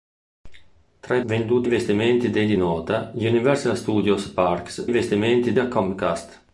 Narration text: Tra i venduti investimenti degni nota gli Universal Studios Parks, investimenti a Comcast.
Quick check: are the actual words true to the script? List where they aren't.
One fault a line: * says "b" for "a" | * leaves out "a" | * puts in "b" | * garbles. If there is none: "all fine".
all fine